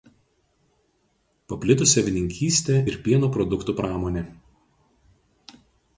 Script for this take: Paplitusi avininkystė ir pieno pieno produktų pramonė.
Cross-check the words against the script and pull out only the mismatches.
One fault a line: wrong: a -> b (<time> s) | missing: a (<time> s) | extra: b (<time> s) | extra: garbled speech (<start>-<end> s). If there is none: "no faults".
missing: pieno (3.3 s)